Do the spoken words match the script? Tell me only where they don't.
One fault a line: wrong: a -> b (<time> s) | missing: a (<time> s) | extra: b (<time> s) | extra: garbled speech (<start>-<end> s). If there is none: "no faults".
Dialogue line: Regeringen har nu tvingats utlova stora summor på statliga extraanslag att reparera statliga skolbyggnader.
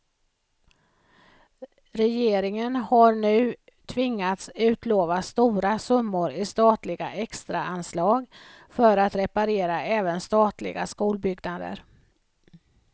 wrong: på -> i (6.3 s)
extra: för (8.7 s)
extra: även (9.8 s)